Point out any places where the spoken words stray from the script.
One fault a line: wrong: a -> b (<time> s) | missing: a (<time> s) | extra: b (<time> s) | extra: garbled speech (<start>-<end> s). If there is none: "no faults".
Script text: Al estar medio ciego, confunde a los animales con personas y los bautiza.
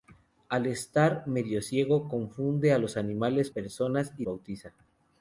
missing: con (3.5 s)
missing: los (4.3 s)